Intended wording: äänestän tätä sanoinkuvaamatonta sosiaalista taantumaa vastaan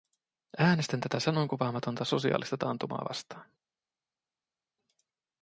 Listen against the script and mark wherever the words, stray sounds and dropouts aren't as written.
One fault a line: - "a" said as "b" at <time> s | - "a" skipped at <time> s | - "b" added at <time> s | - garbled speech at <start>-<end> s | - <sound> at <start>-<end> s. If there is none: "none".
none